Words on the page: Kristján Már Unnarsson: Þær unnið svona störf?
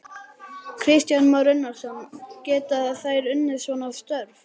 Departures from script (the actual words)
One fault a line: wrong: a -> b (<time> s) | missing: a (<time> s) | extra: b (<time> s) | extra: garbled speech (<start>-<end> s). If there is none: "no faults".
extra: Geta (2.5 s)